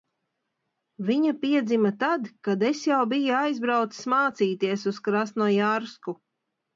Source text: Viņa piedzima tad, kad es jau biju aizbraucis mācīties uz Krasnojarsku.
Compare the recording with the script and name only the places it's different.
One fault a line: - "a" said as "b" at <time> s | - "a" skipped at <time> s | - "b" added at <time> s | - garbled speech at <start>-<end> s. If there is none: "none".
none